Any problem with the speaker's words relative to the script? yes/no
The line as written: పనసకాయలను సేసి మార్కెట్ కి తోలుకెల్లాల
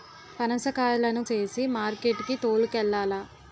no